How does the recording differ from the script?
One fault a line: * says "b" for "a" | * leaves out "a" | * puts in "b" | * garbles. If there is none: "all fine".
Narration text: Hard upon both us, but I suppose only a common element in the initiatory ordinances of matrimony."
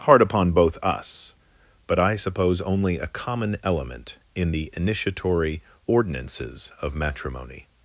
all fine